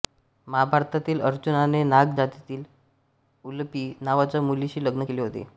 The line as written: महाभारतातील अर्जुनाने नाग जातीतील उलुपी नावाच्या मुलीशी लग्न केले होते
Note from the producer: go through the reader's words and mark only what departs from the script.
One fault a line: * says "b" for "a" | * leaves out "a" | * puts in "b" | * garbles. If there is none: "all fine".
all fine